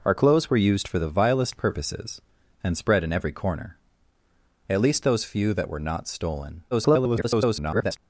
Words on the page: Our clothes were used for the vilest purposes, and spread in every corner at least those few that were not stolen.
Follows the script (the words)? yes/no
no